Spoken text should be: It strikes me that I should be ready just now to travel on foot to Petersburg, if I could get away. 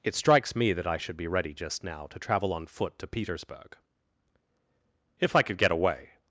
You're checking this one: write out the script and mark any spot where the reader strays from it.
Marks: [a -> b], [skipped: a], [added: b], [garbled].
It strikes me that I should be ready just now to travel on foot to Petersburg, if I could get away.